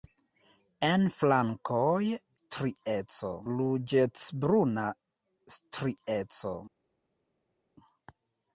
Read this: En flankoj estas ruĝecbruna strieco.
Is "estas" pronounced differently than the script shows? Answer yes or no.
yes